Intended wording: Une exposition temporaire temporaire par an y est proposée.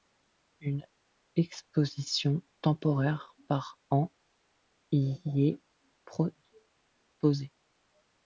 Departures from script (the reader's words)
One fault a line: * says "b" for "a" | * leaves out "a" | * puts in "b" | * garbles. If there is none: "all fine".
* leaves out "temporaire"